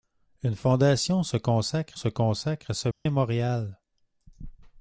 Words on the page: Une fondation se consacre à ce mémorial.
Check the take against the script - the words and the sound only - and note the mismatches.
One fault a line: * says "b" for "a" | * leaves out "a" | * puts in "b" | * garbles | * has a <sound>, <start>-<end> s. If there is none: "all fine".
* puts in "se consacre"
* has a dropout, 2.9-3.1 s